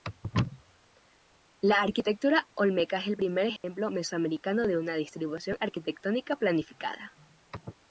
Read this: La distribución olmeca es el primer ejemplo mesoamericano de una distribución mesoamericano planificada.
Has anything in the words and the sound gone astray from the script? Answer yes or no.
yes